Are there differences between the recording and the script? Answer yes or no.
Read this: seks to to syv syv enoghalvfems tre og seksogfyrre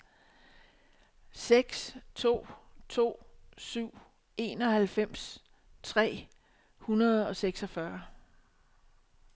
yes